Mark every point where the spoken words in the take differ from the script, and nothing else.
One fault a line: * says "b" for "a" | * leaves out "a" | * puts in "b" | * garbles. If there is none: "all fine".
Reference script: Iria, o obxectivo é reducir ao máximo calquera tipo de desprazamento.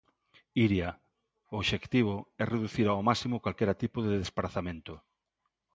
all fine